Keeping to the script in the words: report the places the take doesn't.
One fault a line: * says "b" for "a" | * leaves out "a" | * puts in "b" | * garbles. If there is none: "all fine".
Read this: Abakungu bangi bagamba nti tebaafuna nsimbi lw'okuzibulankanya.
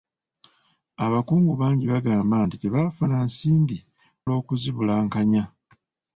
all fine